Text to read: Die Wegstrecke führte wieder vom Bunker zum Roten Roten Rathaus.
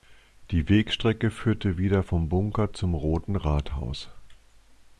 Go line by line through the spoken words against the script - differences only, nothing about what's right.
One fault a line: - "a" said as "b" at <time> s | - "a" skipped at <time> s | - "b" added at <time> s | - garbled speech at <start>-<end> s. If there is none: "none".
- "Roten" skipped at 3.3 s